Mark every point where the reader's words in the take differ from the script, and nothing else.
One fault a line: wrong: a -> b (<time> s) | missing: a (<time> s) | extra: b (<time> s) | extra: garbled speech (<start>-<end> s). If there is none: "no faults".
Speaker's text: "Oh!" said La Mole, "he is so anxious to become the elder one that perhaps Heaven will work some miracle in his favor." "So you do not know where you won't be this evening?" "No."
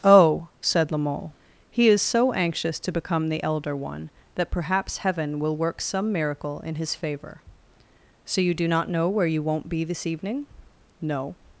no faults